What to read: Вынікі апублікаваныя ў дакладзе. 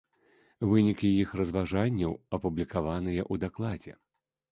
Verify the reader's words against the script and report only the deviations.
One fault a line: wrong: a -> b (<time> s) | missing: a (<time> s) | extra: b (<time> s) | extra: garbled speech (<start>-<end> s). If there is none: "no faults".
extra: іх разважанняў (1.2 s)